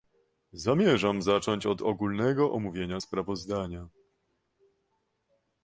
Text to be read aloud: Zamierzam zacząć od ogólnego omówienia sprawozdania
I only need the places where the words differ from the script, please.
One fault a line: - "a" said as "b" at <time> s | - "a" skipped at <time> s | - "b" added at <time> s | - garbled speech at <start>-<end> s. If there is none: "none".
none